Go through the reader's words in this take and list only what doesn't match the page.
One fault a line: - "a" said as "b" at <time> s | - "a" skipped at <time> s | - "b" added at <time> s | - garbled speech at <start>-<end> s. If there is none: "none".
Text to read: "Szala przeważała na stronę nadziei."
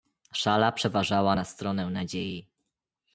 none